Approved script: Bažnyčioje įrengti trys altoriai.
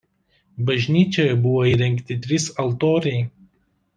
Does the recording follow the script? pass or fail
fail